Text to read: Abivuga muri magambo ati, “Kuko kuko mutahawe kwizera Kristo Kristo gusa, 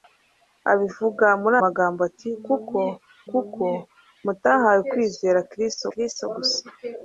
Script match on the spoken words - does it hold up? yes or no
yes